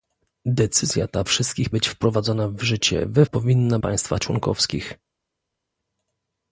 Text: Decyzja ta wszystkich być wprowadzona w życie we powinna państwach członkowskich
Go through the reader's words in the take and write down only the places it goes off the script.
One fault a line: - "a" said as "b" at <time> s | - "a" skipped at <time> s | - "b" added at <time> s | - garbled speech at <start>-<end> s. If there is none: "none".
none